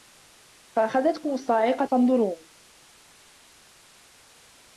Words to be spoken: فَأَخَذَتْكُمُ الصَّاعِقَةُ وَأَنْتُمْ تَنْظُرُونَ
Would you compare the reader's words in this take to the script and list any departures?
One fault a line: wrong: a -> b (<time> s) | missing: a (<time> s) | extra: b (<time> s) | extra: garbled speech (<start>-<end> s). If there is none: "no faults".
missing: وَأَنْتُمْ (1.9 s)